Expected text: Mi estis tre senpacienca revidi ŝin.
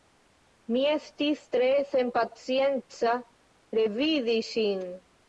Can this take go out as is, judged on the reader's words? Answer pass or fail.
pass